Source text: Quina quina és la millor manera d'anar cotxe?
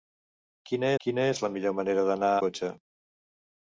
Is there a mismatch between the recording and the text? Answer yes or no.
no